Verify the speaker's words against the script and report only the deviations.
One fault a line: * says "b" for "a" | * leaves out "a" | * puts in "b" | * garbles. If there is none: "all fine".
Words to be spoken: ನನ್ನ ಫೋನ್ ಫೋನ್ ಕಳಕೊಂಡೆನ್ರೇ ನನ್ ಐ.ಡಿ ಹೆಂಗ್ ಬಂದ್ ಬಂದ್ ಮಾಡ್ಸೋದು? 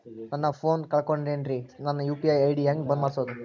* leaves out "ಫೋನ್"
* puts in "ಯು.ಪಿ.ಐ"
* leaves out "ಬಂದ್"